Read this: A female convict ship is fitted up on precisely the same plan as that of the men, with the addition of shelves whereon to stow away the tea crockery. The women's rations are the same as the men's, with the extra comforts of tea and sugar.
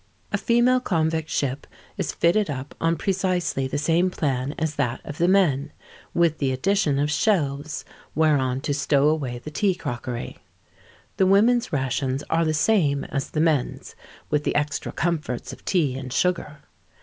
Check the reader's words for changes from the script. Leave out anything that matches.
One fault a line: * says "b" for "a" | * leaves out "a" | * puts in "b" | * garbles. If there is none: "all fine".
all fine